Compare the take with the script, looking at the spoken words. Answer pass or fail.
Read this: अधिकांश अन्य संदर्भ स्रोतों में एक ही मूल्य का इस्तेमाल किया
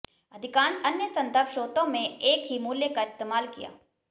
pass